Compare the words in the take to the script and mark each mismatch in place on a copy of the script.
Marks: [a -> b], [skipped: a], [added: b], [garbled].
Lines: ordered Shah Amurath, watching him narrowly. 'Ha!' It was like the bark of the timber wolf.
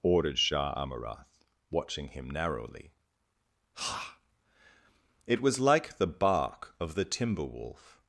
ordered Shah Amurath, watching him narrowly. 'Ha!' It was like the bark of the timber wolf.